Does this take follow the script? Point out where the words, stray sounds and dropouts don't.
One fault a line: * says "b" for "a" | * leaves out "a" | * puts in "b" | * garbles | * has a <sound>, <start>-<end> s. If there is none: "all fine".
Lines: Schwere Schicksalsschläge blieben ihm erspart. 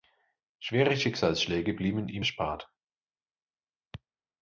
all fine